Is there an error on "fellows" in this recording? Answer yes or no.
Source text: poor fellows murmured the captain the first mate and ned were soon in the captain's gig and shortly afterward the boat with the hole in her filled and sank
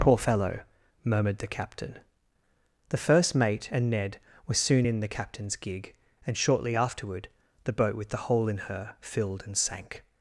yes